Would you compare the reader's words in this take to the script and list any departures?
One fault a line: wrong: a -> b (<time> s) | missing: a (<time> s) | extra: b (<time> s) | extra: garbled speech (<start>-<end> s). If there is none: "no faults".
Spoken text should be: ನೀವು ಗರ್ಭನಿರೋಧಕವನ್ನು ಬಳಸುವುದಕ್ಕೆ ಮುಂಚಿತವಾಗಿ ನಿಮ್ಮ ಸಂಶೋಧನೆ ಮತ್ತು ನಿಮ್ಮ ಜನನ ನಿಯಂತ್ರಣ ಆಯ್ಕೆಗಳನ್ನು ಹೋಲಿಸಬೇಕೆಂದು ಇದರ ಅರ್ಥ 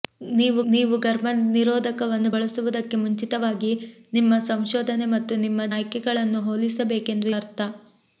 extra: ನೀವು (0.7 s)
missing: ಜನನ ನಿಯಂತ್ರಣ (5.7 s)
missing: ಇದರ (7.3 s)